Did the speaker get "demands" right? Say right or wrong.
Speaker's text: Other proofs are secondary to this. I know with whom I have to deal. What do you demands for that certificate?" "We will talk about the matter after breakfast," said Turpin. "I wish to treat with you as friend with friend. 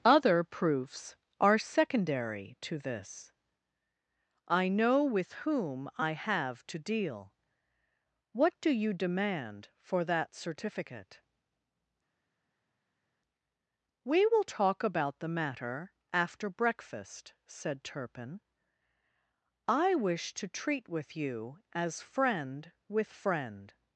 wrong